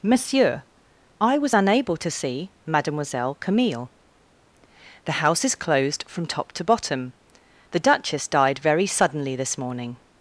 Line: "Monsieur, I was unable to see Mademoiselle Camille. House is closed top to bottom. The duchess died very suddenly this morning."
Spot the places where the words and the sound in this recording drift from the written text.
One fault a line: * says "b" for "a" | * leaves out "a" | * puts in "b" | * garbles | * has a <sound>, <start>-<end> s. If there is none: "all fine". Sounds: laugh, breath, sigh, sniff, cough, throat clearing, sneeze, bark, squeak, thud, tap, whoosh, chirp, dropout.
* puts in "The"
* puts in "from"